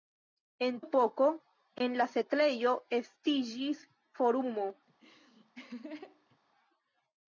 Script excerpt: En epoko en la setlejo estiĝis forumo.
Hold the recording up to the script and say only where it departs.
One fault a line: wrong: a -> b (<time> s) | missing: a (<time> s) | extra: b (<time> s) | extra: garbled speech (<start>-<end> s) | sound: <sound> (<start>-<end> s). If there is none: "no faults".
sound: laugh (4.9-6.4 s)